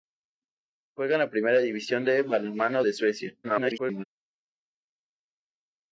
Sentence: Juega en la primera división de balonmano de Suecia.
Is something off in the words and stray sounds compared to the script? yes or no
yes